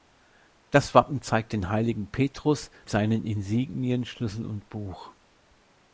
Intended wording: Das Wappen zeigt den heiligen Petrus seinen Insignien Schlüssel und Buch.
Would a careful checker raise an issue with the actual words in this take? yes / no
no